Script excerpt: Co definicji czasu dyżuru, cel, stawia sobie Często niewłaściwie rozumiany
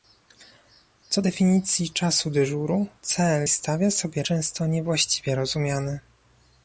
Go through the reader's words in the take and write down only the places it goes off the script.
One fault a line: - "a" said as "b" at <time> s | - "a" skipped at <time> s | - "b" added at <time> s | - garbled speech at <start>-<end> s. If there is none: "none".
none